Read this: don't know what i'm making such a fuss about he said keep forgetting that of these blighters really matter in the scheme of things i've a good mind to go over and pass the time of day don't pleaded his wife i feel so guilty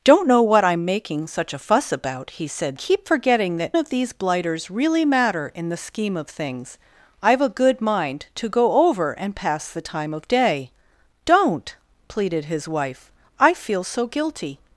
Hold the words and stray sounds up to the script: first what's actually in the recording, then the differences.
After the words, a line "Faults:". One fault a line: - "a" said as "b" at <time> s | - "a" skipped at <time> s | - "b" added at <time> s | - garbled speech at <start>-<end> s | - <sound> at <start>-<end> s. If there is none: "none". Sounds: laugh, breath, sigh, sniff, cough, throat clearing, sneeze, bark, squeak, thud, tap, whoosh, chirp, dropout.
don't know what i'm making such a fuss about he said keep forgetting that of these blighters really matter in the scheme of things i've a good mind to go over and pass the time of day don't pleaded his wife i feel so guilty
Faults:
none